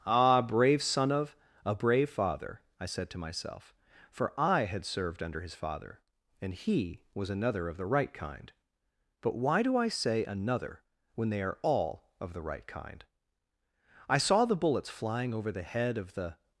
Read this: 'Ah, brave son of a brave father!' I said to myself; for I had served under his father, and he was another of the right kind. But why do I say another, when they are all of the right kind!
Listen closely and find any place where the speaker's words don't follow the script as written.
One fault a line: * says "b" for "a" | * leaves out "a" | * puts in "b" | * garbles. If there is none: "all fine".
* puts in "I saw the bullets flying over the head of the"